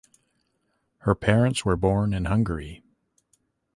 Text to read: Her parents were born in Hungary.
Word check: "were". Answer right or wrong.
right